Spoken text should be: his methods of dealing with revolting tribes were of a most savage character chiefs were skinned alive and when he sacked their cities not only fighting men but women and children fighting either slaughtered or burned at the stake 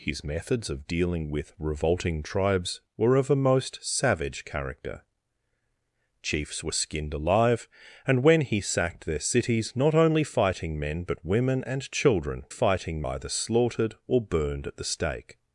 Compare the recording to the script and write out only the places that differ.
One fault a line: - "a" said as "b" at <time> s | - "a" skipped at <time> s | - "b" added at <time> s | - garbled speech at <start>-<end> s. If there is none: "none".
none